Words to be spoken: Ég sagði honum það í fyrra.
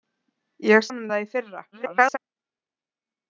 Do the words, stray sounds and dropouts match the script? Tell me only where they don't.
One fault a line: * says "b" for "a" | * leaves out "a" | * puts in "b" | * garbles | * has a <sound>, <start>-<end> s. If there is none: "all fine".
* leaves out "sagði"
* garbles